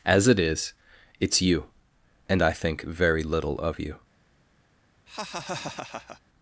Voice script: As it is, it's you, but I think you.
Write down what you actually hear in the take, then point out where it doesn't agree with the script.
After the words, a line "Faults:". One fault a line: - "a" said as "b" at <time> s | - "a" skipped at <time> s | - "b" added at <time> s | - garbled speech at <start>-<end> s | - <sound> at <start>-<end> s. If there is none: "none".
As it is, it's you, and I think very little of you.
Faults:
- "but" said as "and" at 2.3 s
- "very little of" added at 2.8 s
- laugh at 5.1-6.2 s